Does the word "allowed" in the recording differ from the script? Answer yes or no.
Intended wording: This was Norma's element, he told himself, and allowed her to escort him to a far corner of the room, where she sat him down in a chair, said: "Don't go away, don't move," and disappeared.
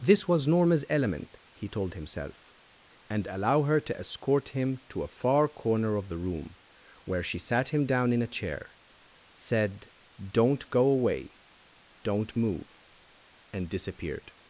yes